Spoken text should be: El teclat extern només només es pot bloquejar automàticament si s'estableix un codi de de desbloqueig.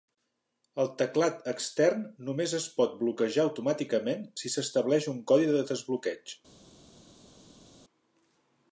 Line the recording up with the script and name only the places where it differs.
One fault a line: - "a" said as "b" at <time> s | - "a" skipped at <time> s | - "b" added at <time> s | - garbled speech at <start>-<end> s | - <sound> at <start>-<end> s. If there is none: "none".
- "només" skipped at 2.5 s
- "de" skipped at 5.7 s